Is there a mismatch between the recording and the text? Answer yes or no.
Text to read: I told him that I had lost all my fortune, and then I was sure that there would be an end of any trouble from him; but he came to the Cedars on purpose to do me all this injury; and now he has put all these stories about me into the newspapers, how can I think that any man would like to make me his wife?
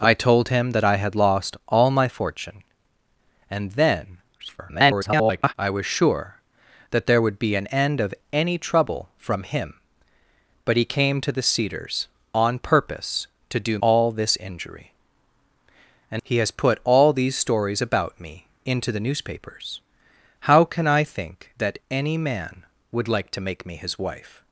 yes